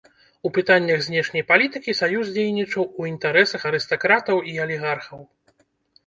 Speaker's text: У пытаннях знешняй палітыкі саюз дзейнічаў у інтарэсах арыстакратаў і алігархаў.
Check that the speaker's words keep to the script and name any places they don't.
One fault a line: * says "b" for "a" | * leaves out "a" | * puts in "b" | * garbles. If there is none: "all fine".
all fine